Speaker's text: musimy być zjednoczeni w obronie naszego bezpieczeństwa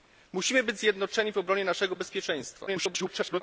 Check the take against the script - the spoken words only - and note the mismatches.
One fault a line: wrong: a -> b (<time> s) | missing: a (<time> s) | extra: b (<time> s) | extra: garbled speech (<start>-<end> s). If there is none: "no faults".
extra: garbled speech (2.7-3.4 s)